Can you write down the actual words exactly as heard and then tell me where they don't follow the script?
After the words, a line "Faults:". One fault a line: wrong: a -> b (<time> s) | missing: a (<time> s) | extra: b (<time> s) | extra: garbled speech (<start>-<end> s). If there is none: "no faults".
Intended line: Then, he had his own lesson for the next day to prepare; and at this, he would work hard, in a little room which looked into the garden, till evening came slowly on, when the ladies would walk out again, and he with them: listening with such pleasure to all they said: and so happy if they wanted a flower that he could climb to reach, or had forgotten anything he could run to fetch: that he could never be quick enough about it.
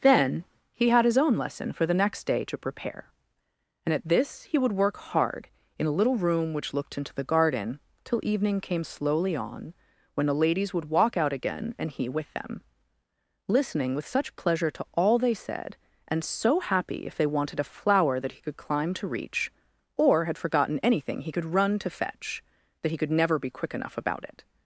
Then, he had his own lesson for the next day to prepare; and at this, he would work hard, in a little room which looked into the garden, till evening came slowly on, when the ladies would walk out again, and he with them: listening with such pleasure to all they said: and so happy if they wanted a flower that he could climb to reach, or had forgotten anything he could run to fetch: that he could never be quick enough about it.
Faults:
no faults